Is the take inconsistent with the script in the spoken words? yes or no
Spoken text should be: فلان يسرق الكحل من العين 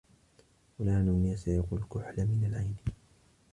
no